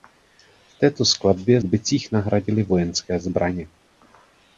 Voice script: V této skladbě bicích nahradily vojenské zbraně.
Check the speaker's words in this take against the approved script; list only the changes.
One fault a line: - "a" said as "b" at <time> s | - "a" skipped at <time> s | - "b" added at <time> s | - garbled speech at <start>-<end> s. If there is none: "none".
none